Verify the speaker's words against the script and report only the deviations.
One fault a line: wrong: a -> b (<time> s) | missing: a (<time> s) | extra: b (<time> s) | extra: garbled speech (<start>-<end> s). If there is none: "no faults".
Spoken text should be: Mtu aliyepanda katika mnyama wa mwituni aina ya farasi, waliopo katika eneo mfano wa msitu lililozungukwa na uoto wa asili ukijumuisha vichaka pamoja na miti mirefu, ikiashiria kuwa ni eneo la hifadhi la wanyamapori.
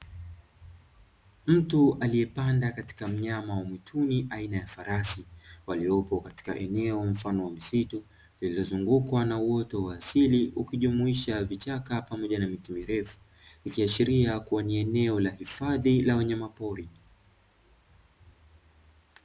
no faults